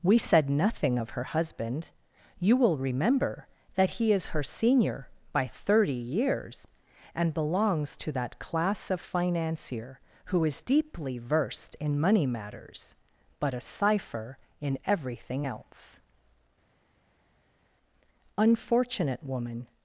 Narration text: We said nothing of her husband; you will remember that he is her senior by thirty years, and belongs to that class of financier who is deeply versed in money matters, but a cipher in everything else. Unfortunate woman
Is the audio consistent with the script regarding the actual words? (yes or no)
yes